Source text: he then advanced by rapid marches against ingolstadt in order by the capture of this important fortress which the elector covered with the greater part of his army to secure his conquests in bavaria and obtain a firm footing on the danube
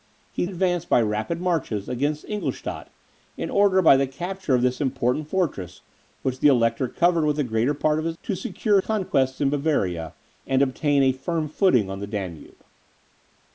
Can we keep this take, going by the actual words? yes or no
no